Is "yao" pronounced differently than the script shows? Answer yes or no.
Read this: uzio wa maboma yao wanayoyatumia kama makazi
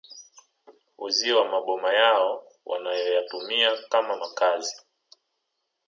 no